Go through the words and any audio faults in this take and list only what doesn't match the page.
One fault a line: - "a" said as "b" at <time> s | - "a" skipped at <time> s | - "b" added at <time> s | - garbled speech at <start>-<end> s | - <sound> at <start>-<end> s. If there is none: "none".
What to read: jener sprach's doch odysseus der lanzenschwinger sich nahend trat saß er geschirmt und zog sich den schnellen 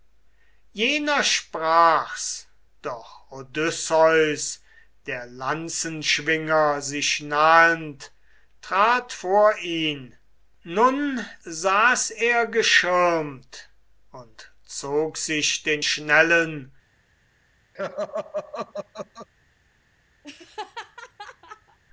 - "vor ihn nun" added at 9.1 s
- laugh at 17.7-19.3 s
- laugh at 20.2-21.8 s